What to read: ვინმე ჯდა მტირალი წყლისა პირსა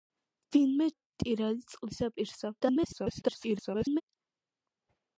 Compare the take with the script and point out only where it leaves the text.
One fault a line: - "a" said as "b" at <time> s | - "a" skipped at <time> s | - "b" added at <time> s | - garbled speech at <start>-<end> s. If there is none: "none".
- "ჯდა" skipped at 0.9 s
- garbled speech at 2.6-4.0 s